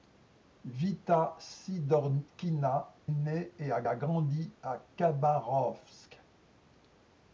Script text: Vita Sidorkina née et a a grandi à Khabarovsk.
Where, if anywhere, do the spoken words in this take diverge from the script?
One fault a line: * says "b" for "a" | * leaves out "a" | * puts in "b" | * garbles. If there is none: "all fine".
all fine